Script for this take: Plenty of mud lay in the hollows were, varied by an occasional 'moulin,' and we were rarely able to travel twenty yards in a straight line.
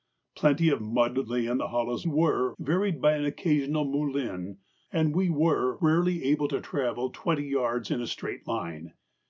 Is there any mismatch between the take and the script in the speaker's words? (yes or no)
no